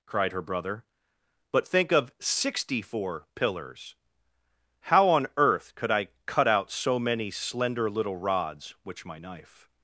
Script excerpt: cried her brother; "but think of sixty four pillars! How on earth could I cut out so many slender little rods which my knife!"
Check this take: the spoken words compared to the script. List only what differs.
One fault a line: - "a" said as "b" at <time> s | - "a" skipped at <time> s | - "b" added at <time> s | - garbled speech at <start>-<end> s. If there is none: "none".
none